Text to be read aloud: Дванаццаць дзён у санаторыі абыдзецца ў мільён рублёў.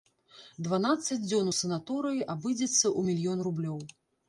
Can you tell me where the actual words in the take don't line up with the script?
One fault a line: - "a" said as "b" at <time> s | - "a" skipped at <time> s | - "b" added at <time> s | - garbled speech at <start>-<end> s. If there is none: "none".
none